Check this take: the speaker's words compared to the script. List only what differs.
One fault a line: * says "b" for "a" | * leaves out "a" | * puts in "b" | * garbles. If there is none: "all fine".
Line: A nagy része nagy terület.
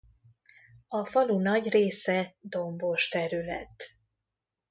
* puts in "falu"
* says "dombos" for "nagy"